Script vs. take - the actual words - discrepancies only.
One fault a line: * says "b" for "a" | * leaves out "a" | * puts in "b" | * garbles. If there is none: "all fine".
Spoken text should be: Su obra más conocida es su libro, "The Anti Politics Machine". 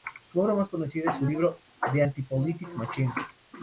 all fine